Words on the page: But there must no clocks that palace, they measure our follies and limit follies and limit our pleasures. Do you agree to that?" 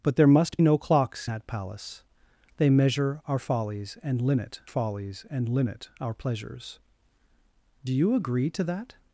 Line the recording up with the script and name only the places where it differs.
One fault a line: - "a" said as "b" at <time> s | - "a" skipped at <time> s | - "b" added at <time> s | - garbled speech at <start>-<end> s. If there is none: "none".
none